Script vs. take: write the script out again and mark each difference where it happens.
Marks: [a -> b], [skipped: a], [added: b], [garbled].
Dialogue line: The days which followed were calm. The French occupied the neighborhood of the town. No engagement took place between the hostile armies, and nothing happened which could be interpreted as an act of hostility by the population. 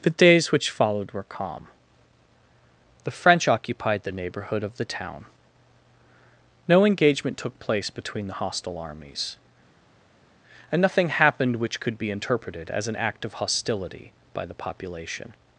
The days which followed were calm. The French occupied the neighborhood of the town. No engagement took place between the hostile armies, and nothing happened which could be interpreted as an act of hostility by the population.